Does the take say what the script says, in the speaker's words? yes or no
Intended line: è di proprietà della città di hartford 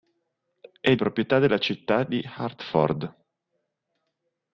no